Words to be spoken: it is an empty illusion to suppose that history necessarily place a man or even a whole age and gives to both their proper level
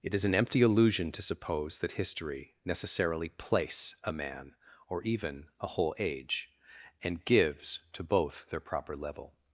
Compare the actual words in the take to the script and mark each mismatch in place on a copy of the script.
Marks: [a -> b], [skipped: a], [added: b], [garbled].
it is an empty illusion to suppose that history necessarily place a man or even a whole age and gives to both their proper level